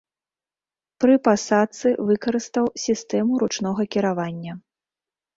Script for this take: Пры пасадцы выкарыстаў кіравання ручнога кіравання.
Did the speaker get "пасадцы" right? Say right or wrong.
right